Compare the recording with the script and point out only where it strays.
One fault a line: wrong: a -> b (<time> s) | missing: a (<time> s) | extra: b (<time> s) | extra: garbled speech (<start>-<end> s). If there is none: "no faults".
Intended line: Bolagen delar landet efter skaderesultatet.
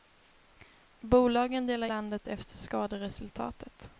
no faults